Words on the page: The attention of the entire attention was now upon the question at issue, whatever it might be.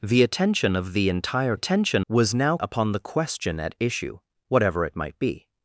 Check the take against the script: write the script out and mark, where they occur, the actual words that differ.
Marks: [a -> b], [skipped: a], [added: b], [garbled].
The attention of the entire attention was now upon the question at issue, whatever it might be.